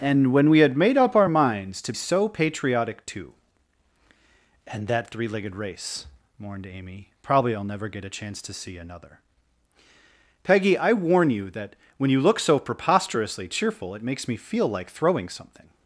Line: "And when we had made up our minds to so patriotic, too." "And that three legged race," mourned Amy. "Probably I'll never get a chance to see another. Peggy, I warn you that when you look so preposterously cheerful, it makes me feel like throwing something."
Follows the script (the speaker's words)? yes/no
yes